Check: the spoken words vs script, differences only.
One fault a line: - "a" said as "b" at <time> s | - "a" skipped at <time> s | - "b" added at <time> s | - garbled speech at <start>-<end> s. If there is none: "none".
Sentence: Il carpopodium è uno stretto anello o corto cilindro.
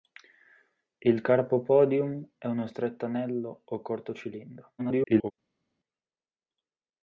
- garbled speech at 4.8-5.3 s